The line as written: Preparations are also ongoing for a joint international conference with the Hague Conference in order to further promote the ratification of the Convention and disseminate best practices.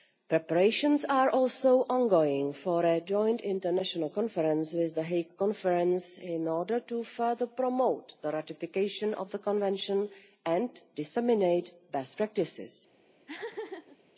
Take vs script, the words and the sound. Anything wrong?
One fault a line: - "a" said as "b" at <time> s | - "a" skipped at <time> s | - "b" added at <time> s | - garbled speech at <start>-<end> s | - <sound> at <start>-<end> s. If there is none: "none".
- laugh at 13.3-14.0 s